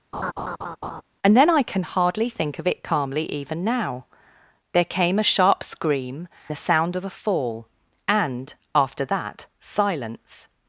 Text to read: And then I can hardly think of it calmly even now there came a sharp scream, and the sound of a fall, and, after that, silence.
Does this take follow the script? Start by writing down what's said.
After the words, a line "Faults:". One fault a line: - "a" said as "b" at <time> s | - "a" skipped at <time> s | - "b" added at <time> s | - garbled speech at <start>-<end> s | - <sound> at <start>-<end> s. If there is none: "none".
And then I can hardly think of it calmly even now there came a sharp scream, the sound of a fall, and, after that, silence.
Faults:
- laugh at 0.1-1.0 s
- "and" skipped at 6.3 s